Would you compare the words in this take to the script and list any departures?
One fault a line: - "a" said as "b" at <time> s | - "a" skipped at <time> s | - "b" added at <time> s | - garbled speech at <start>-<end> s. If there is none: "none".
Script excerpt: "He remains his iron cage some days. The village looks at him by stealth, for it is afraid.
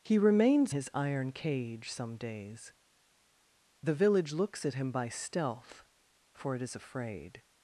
none